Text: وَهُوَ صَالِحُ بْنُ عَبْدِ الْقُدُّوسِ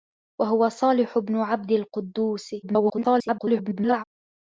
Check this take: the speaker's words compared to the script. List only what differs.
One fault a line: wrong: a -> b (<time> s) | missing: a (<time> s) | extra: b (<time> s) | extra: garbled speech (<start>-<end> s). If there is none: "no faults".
extra: garbled speech (2.6-4.0 s)